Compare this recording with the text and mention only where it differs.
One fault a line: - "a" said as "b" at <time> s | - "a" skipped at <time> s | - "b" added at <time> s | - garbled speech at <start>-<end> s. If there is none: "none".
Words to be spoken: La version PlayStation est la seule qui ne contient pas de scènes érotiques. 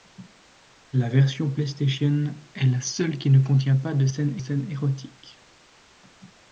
- "scènes" added at 4.4 s